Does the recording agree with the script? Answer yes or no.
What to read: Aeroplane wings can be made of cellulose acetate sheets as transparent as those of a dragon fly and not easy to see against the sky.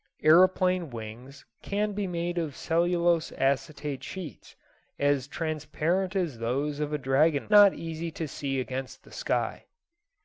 no